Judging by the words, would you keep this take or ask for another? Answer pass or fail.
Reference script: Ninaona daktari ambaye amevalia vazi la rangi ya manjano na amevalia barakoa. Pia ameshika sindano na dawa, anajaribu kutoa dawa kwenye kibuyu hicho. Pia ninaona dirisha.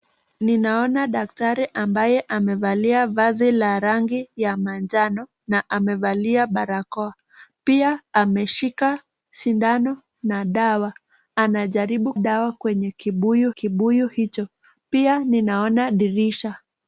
fail